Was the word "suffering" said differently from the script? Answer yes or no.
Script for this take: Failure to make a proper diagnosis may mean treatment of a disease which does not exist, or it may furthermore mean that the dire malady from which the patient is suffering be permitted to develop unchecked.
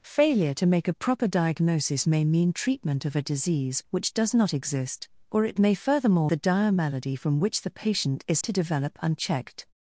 yes